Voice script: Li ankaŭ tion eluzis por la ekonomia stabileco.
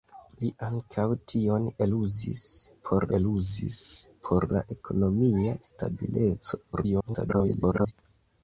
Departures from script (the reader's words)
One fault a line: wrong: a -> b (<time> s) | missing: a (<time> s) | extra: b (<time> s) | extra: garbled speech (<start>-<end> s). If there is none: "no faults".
extra: eluzis por (3.2 s)
extra: garbled speech (6.7-7.9 s)